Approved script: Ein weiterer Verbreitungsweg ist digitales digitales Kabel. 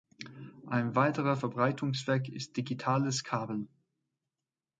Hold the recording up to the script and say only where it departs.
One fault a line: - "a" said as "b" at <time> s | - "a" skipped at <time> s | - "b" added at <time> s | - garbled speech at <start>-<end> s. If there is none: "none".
- "digitales" skipped at 3.2 s